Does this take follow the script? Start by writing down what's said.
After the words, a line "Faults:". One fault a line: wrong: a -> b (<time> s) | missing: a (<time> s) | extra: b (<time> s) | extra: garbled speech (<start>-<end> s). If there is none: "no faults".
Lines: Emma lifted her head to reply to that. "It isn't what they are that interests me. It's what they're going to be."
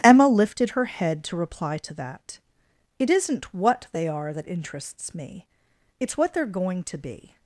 Emma lifted her head to reply to that. "It isn't what they are that interests me. It's what they're going to be."
Faults:
no faults